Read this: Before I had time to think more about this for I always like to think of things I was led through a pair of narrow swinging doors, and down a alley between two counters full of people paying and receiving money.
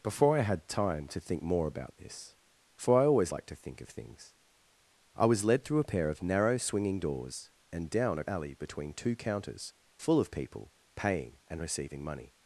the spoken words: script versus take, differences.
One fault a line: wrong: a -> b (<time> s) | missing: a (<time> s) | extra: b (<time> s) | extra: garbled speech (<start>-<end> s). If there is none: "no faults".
no faults